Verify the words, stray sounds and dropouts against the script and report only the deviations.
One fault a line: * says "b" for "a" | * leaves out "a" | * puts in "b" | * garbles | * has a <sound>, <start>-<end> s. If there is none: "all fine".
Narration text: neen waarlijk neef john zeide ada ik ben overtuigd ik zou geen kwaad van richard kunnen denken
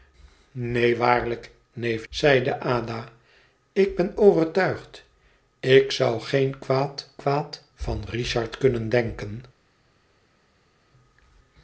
* leaves out "john"
* puts in "kwaad"